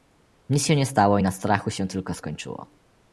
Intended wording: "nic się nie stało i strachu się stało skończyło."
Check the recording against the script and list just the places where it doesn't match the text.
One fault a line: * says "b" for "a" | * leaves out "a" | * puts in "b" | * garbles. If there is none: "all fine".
* puts in "na"
* says "tylko" for "stało"